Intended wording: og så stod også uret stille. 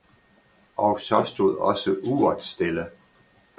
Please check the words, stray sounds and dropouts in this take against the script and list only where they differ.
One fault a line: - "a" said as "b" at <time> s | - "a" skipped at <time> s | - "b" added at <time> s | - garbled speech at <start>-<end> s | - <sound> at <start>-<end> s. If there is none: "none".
none